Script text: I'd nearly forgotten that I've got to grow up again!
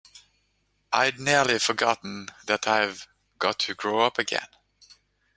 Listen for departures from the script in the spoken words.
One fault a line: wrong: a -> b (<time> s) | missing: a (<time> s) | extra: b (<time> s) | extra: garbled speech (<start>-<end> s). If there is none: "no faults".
no faults